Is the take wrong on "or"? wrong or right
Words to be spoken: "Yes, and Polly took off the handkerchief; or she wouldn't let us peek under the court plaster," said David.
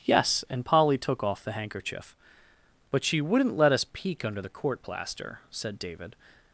wrong